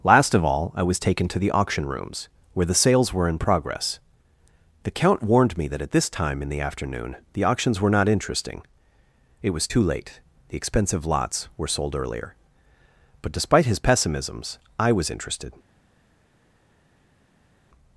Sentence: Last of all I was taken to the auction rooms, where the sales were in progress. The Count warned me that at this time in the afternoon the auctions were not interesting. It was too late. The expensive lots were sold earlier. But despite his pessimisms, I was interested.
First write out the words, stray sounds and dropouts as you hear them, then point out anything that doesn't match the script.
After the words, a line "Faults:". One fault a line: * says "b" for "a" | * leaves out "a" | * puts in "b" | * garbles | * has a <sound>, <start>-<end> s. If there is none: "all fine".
Last of all I was taken to the auction rooms, where the sales were in progress. The Count warned me that at this time in the afternoon the auctions were not interesting. It was too late. The expensive lots were sold earlier. But despite his pessimisms, I was interested.
Faults:
all fine